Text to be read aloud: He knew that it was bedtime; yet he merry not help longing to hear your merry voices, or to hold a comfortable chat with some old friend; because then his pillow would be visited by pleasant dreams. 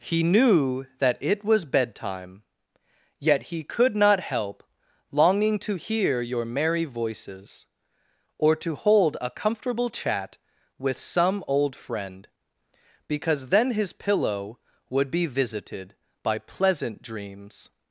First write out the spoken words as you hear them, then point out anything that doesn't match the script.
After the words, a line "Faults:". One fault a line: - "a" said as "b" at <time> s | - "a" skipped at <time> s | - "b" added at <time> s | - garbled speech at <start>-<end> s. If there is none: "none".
He knew that it was bedtime; yet he could not help longing to hear your merry voices, or to hold a comfortable chat with some old friend; because then his pillow would be visited by pleasant dreams.
Faults:
- "merry" said as "could" at 3.6 s